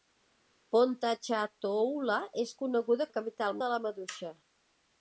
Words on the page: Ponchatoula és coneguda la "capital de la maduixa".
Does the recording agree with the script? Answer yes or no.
yes